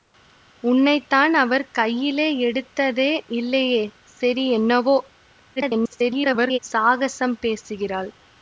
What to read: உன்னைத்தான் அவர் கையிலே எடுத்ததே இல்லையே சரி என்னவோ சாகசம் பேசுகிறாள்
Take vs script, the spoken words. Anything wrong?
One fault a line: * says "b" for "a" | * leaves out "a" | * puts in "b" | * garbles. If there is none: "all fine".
* garbles